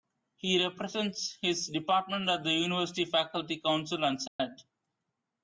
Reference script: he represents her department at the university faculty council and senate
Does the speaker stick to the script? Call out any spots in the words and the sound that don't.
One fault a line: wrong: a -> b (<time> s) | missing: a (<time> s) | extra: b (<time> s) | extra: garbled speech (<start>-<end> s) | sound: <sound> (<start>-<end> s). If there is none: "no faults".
wrong: her -> his (1.4 s)
sound: dropout (4.3-4.4 s)